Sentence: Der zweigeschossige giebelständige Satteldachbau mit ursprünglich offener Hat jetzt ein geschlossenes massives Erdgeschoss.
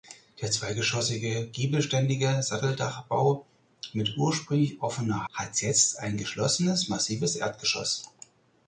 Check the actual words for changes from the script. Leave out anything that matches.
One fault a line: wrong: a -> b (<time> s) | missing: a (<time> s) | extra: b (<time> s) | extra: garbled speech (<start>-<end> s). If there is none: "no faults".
no faults